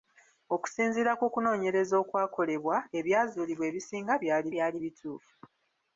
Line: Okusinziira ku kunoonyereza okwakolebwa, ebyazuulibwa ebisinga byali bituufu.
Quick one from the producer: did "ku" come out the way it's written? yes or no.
yes